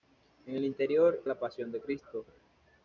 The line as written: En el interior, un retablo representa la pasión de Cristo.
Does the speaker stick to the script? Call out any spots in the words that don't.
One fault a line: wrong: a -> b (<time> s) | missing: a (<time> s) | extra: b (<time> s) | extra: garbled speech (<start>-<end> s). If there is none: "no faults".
missing: un retablo representa (1.2 s)